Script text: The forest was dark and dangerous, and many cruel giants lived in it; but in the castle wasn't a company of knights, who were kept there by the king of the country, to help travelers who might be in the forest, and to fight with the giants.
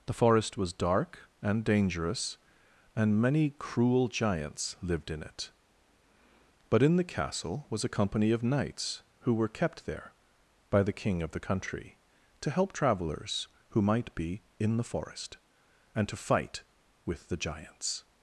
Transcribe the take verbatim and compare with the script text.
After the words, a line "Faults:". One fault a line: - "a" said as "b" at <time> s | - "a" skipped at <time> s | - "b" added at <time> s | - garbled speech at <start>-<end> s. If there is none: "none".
The forest was dark and dangerous, and many cruel giants lived in it; but in the castle was a company of knights, who were kept there by the king of the country, to help travelers who might be in the forest, and to fight with the giants.
Faults:
- "wasn't" said as "was" at 7.7 s